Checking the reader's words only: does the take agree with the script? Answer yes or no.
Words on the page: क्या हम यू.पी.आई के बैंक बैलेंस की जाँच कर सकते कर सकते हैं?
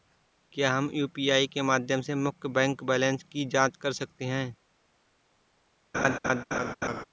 no